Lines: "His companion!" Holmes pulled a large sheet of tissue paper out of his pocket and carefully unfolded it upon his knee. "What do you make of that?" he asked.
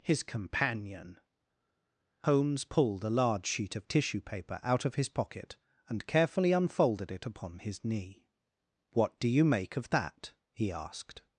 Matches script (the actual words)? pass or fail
pass